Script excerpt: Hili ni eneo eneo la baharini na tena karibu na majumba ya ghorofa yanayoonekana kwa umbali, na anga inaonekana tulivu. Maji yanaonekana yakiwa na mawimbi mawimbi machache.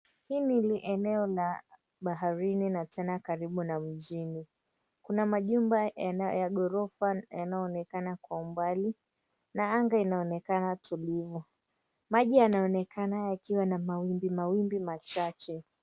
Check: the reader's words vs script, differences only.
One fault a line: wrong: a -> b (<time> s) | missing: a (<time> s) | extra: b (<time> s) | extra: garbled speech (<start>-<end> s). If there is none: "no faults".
missing: eneo (1.3 s)
extra: mjini Kuna (3.8 s)